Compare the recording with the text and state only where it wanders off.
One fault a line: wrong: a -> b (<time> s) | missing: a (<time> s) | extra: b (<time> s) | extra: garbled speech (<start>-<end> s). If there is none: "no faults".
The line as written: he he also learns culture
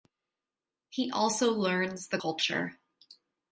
missing: he (1.1 s)
extra: the (2.1 s)